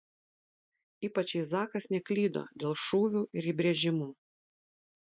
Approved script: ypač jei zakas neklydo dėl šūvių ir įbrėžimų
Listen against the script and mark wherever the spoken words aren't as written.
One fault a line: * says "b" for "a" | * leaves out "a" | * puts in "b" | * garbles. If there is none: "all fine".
all fine